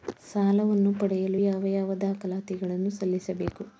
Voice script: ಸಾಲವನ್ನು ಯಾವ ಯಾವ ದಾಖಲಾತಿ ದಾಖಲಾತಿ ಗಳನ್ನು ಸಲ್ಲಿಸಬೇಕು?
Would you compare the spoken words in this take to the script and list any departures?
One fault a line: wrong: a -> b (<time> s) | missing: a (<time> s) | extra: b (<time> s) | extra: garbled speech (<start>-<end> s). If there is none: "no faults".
extra: ಪಡೆಯಲು (0.9 s)
missing: ದಾಖಲಾತಿ (2.6 s)